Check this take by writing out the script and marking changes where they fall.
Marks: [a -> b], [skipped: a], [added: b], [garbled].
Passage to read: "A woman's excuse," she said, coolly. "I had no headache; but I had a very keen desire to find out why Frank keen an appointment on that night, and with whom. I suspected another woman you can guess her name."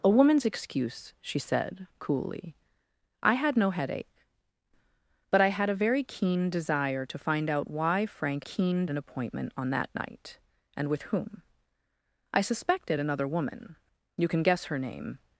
"A woman's excuse," she said, coolly. "I had no headache; but I had a very keen desire to find out why Frank keen an appointment on that night, and with whom. I suspected another woman you can guess her name."